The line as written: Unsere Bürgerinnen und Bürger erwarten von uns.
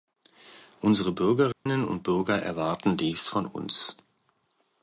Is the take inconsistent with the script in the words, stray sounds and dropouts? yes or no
yes